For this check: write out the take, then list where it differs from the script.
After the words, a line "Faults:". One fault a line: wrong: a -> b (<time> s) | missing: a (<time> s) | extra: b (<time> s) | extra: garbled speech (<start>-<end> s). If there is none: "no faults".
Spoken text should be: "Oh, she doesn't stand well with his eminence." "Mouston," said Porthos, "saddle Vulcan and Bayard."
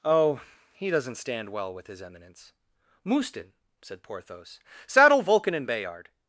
"Oh, he doesn't stand well with his eminence." "Mouston," said Porthos, "saddle Vulcan and Bayard."
Faults:
wrong: she -> he (0.7 s)